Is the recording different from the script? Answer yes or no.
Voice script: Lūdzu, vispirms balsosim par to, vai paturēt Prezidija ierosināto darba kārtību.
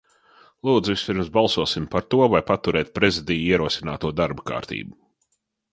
no